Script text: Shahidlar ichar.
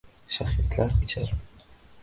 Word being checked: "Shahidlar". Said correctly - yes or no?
yes